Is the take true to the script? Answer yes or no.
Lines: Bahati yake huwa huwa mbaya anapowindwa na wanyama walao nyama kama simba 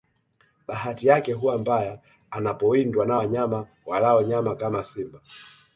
no